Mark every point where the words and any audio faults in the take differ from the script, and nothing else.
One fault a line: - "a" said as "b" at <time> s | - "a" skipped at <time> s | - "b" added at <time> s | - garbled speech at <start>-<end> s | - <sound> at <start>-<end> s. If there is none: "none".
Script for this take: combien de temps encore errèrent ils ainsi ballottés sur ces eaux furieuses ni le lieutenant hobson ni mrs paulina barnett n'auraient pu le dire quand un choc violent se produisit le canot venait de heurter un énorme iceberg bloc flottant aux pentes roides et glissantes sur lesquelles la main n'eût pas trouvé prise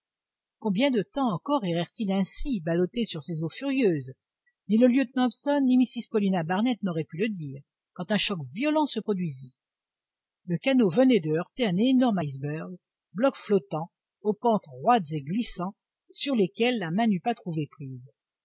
none